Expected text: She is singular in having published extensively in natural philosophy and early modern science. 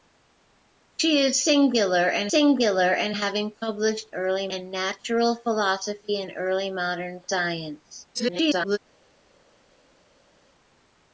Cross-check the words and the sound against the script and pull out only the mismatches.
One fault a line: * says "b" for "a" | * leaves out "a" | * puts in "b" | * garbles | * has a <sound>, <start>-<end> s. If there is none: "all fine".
* puts in "singular in"
* says "early" for "extensively"
* garbles